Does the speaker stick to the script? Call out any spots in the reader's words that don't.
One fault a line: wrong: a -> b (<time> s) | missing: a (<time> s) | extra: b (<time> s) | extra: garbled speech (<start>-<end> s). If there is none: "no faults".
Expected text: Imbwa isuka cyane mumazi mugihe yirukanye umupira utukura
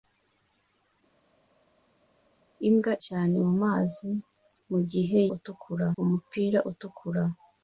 missing: isuka (2.9 s)
wrong: yirukanye -> utukura (5.3 s)